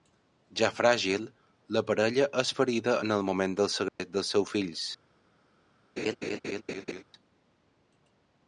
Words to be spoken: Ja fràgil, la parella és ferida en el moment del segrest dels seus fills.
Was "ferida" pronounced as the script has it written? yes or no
yes